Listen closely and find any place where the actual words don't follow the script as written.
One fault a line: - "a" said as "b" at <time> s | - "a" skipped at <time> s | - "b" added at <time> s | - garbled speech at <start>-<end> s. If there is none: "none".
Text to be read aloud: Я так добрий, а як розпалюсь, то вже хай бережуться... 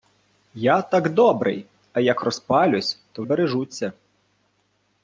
- "вже хай" skipped at 3.2 s